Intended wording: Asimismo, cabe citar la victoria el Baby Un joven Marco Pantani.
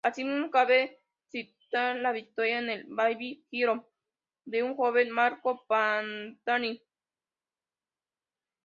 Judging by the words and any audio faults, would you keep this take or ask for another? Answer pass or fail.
fail